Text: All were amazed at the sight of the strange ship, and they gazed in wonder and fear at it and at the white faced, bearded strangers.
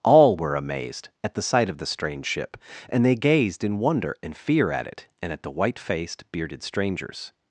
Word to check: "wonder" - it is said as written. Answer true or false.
true